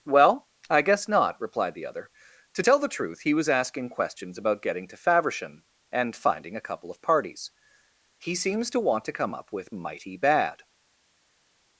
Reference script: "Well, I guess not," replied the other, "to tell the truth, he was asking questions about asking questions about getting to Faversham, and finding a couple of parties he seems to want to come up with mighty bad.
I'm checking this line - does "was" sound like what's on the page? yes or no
yes